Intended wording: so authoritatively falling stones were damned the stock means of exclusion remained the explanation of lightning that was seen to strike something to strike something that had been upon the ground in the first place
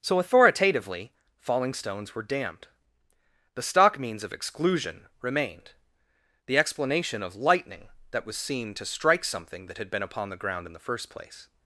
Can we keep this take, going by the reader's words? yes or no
no